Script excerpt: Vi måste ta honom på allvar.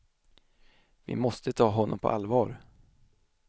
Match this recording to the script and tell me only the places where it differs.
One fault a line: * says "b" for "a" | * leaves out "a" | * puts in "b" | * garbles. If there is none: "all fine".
all fine